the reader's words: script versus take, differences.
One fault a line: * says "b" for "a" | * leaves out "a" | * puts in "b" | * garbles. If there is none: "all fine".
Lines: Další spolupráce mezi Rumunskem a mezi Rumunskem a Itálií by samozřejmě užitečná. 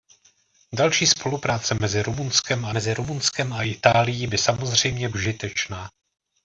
all fine